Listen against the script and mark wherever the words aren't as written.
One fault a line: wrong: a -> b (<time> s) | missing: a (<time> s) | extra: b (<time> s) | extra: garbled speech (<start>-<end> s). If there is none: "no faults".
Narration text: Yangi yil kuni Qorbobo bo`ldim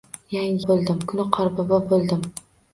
wrong: yil -> bo`ldim (0.7 s)